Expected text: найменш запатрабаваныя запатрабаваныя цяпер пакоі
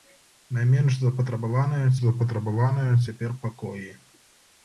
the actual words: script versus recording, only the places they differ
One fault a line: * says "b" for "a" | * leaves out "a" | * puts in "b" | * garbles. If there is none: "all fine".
all fine